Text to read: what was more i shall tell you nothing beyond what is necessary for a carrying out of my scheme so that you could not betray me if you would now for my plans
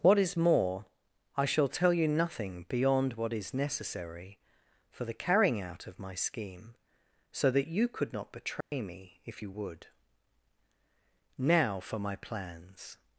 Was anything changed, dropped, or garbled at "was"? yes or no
yes